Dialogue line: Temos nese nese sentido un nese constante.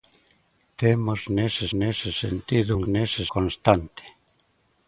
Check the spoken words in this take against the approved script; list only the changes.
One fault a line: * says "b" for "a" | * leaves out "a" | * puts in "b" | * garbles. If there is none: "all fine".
all fine